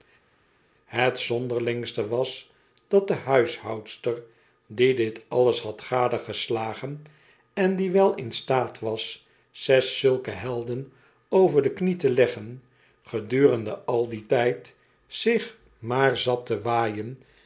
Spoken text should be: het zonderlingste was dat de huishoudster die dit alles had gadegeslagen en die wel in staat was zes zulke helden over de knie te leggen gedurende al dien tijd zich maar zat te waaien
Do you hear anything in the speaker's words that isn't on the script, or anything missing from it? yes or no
no